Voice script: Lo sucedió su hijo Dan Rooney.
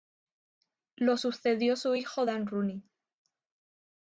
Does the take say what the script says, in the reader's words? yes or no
yes